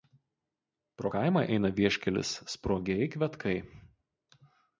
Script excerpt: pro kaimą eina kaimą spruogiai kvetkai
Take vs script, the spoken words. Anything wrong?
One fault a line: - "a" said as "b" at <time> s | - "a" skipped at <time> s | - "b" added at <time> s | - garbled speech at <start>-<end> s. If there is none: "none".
- "kaimą" said as "vieškelis" at 1.8 s